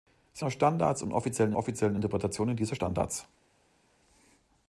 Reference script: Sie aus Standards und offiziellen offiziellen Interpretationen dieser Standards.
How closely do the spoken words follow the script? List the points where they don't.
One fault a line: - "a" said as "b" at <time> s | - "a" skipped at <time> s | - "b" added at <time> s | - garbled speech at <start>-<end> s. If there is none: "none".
none